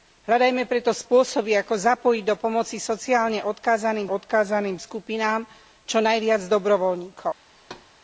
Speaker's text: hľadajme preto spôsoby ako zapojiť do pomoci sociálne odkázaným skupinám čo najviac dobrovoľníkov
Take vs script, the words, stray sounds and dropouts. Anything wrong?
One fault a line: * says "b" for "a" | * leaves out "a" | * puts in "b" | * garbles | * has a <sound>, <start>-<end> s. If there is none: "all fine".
* puts in "odkázaným"
* has a thud, 7.6-7.9 s